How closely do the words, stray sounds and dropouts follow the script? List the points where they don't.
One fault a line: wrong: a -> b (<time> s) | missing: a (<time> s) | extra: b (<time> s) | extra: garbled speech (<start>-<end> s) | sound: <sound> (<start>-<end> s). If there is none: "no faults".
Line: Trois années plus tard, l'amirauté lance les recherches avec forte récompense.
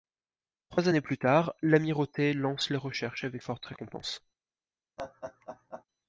sound: laugh (5.0-5.8 s)